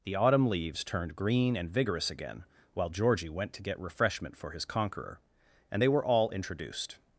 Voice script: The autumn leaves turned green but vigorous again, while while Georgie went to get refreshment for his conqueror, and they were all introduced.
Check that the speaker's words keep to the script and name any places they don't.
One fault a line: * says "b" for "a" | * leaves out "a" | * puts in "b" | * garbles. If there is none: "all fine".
* says "and" for "but"
* leaves out "while"